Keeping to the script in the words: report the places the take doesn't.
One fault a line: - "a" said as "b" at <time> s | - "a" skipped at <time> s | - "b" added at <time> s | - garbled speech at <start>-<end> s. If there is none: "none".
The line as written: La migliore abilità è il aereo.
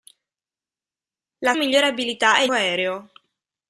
none